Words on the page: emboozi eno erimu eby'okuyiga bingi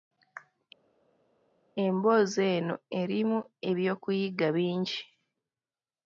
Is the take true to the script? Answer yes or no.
yes